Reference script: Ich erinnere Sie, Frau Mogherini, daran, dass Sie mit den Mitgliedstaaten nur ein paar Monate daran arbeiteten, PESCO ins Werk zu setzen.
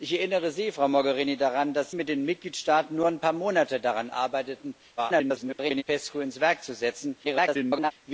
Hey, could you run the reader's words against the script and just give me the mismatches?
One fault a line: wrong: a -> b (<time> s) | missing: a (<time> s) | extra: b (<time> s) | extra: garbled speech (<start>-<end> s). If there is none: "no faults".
missing: Sie (1.9 s)
extra: garbled speech (5.0-5.8 s)
extra: garbled speech (7.2-7.9 s)